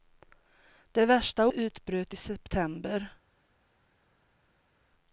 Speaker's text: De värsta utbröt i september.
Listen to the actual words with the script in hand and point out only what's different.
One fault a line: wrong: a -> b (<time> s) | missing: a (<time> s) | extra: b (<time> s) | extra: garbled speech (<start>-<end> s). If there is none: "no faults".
no faults